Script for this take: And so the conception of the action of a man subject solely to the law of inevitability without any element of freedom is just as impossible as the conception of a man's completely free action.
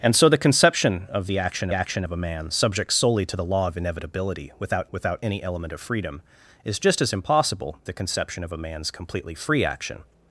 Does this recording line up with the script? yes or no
no